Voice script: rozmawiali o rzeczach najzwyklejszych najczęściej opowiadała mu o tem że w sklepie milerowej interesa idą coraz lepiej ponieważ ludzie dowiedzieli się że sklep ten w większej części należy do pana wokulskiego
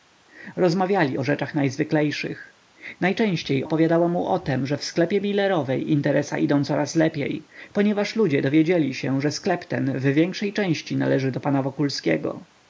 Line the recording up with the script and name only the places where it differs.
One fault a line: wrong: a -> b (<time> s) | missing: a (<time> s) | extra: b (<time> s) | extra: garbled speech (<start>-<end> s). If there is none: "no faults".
no faults